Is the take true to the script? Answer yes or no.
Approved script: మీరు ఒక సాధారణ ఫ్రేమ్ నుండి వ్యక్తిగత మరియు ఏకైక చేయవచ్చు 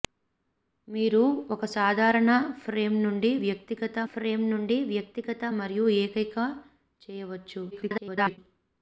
no